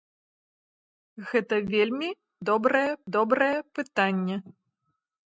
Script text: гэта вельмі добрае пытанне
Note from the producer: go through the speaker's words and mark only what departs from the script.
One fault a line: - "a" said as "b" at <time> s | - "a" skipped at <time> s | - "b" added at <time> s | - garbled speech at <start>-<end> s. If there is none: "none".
- "добрае" added at 3.2 s